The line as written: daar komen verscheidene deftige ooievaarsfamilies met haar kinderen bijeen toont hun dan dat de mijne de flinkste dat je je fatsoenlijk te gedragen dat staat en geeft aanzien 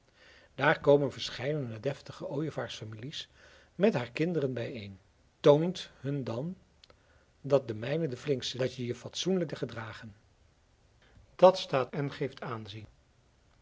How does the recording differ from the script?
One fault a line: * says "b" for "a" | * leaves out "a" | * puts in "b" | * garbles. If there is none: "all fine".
all fine